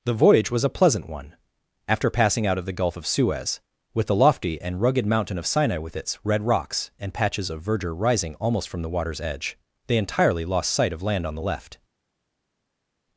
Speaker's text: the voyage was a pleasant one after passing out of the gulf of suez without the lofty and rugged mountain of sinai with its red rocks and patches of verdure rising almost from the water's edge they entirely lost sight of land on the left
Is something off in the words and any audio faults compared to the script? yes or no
yes